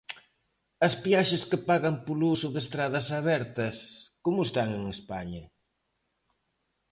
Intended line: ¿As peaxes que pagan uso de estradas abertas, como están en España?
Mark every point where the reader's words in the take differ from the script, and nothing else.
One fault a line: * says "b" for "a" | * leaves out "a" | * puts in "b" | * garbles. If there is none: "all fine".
* puts in "polo"